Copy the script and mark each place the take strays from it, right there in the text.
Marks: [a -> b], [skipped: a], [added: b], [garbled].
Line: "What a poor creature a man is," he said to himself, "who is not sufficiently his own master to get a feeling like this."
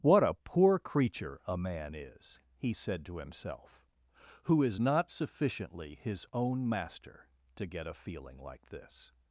"What a poor creature a man is," he said to himself, "who is not sufficiently his own master to get a feeling like this."